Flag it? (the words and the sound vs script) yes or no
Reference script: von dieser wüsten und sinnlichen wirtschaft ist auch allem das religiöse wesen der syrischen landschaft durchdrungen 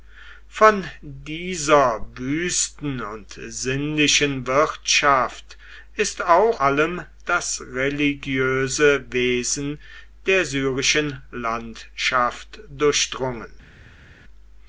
no